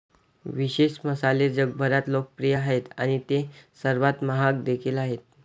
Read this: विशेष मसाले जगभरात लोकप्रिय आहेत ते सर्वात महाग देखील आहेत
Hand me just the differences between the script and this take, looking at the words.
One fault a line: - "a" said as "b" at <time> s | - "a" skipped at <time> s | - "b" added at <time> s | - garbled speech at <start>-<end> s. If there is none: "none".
- "आणि" added at 3.0 s